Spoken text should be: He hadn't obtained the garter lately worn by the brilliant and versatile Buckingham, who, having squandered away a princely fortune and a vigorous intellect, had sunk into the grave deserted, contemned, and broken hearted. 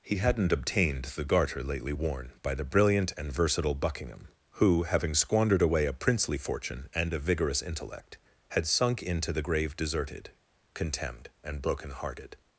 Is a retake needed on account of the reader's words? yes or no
no